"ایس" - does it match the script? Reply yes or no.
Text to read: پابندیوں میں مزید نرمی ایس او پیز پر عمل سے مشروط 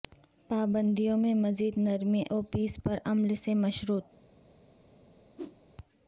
no